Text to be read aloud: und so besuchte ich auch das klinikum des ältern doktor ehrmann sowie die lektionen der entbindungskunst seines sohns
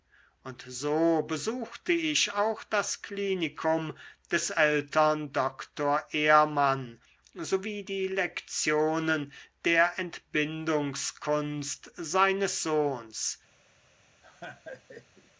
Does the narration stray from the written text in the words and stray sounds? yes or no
yes